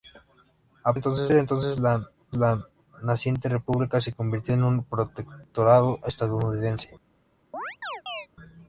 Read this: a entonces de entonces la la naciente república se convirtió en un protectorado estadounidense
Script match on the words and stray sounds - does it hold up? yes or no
no